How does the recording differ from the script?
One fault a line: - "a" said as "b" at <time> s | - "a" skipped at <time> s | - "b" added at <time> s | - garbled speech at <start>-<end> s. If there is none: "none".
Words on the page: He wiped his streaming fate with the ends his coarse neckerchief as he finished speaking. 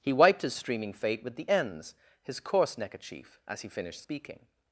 none